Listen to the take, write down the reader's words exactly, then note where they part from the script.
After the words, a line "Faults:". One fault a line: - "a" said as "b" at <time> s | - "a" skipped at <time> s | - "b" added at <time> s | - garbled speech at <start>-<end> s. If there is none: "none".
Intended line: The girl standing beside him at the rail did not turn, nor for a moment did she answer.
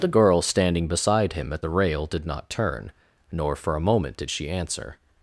The girl standing beside him at the rail did not turn, nor for a moment did she answer.
Faults:
none